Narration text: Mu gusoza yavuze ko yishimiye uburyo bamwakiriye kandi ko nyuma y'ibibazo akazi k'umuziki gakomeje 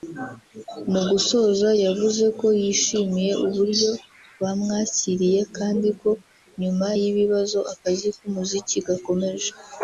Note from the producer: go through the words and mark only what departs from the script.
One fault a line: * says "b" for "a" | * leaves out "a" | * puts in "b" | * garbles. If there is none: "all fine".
all fine